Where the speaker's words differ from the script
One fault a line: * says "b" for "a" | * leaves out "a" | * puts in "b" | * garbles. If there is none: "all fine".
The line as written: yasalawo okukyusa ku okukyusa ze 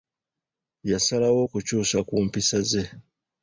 * says "mpisa" for "okukyusa"